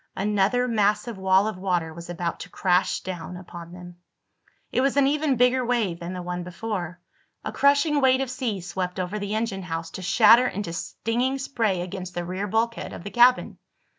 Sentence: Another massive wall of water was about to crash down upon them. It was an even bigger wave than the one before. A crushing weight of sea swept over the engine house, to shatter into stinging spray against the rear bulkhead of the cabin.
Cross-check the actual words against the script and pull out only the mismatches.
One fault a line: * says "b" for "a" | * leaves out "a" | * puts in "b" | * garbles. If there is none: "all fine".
all fine